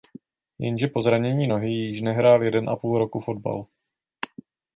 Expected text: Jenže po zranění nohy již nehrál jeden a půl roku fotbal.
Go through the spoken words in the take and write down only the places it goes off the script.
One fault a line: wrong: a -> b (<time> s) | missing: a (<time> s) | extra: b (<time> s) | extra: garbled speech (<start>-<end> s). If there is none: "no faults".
no faults